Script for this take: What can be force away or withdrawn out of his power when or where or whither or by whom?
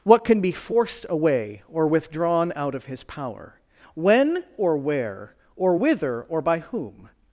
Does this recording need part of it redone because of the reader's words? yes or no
yes